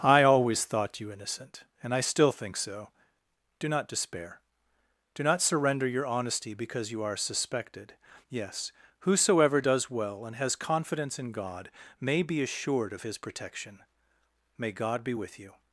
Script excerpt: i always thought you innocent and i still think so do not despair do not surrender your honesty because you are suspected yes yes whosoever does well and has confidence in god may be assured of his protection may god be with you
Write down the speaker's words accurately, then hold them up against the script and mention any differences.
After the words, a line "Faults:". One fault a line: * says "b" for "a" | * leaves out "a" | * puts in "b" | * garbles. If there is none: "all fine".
i always thought you innocent and i still think so do not despair do not surrender your honesty because you are suspected yes whosoever does well and has confidence in god may be assured of his protection may god be with you
Faults:
* leaves out "yes"